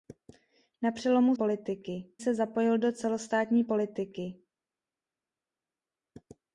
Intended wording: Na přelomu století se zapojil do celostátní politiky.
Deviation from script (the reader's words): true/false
true